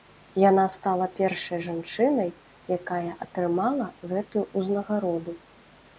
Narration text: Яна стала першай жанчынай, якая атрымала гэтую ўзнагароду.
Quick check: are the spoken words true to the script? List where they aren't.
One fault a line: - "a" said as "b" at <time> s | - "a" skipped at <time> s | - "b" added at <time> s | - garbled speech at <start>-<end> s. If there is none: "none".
none